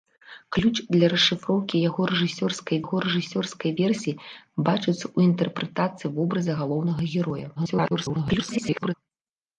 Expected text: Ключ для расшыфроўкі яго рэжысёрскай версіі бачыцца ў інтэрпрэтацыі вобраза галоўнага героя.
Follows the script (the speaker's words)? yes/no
no